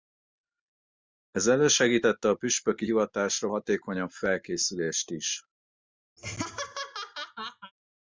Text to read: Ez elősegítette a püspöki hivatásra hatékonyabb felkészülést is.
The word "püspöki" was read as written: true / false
true